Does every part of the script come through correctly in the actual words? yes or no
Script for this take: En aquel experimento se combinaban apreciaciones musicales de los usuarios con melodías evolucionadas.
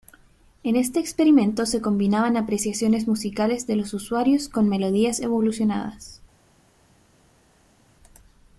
no